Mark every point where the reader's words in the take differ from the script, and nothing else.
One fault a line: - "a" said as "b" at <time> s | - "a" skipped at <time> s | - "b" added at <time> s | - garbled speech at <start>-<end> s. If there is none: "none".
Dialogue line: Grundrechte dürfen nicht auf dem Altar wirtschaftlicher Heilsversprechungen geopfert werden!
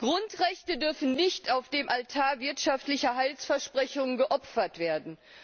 none